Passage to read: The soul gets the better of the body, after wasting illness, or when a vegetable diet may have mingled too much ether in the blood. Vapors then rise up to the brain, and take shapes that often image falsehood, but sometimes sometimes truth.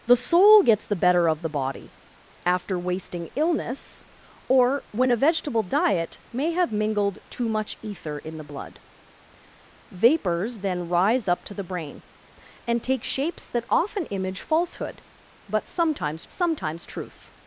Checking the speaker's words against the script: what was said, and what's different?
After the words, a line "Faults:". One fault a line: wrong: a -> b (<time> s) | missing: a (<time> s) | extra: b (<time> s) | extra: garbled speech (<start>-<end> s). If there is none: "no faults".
The soul gets the better of the body, after wasting illness, or when a vegetable diet may have mingled too much ether in the blood. Vapors then rise up to the brain, and take shapes that often image falsehood, but sometimes sometimes truth.
Faults:
no faults